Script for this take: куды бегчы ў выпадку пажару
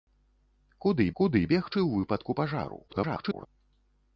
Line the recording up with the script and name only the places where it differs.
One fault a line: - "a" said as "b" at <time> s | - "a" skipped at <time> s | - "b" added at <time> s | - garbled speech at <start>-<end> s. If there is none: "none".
- "куды" added at 1.2 s
- garbled speech at 2.9-3.5 s